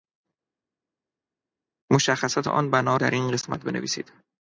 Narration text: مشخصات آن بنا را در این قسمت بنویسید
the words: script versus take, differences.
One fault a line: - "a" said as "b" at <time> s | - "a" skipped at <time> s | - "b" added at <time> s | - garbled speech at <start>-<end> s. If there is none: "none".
- "را" skipped at 3.0 s